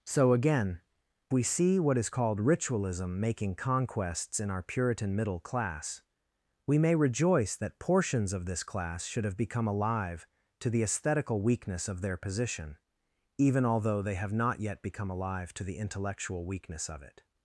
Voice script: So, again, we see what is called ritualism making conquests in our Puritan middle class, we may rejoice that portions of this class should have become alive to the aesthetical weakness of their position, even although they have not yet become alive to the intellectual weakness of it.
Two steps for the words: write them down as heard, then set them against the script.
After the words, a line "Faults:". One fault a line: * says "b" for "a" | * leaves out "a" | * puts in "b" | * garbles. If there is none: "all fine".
So, again, we see what is called ritualism making conquests in our Puritan middle class, we may rejoice that portions of this class should have become alive to the aesthetical weakness of their position, even although they have not yet become alive to the intellectual weakness of it.
Faults:
all fine